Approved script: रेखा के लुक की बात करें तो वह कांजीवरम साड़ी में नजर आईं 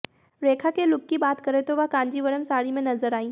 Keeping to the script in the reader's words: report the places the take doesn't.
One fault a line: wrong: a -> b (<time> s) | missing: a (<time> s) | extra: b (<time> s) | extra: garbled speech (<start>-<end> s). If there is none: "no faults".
no faults